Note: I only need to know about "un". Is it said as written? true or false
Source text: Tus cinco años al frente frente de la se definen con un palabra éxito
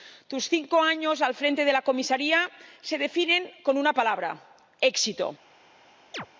false